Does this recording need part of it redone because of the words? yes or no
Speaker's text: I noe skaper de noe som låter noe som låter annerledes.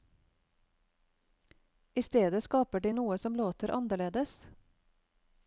yes